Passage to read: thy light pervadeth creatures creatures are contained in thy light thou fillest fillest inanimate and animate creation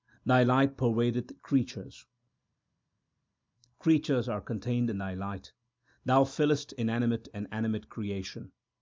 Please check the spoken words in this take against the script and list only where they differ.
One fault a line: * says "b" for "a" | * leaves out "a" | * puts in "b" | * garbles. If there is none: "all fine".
* leaves out "fillest"